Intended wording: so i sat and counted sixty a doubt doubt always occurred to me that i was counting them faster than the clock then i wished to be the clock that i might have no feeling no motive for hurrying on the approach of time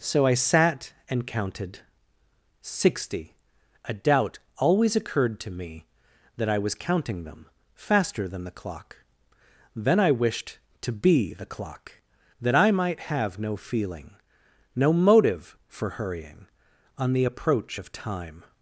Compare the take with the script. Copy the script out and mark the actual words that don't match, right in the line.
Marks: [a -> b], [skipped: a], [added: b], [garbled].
so i sat and counted sixty a doubt [skipped: doubt] always occurred to me that i was counting them faster than the clock then i wished to be the clock that i might have no feeling no motive for hurrying on the approach of time